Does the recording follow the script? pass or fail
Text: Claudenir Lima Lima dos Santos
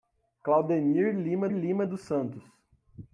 pass